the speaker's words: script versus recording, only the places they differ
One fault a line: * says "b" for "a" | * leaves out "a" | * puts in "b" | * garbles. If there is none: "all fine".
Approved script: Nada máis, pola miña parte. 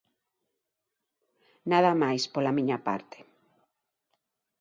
all fine